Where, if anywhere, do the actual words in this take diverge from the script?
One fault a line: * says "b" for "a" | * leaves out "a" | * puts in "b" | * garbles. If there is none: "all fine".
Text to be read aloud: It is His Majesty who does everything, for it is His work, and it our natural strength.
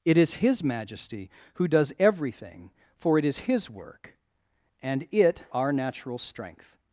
all fine